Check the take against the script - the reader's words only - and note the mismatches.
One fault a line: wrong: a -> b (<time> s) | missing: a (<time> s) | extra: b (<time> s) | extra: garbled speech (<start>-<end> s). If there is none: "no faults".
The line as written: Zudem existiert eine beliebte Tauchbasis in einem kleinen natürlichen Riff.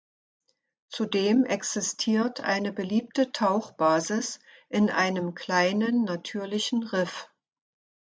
no faults